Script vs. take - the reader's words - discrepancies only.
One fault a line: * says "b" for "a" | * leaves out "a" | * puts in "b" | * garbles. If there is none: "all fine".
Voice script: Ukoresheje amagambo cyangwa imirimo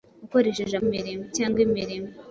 * says "imirimo" for "amagambo"